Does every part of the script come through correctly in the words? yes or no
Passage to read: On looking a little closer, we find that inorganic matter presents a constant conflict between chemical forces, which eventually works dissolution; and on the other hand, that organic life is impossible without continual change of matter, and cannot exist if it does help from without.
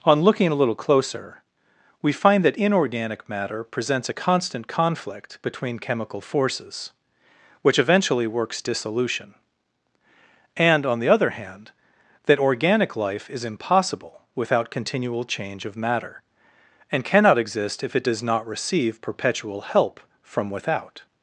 no